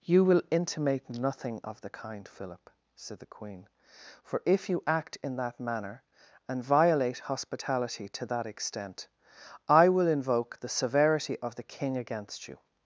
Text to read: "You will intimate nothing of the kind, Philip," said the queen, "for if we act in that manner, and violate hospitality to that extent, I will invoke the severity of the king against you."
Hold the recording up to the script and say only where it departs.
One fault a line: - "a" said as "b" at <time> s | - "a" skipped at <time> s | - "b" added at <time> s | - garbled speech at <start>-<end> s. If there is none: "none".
- "we" said as "you" at 4.7 s